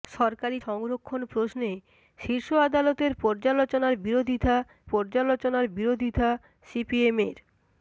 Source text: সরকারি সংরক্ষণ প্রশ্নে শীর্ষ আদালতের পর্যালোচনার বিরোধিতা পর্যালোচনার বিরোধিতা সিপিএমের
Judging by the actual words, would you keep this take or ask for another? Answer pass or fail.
pass